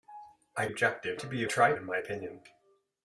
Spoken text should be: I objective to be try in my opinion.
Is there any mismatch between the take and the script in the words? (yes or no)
no